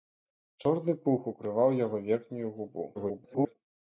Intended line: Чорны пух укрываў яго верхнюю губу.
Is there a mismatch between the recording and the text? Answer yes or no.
yes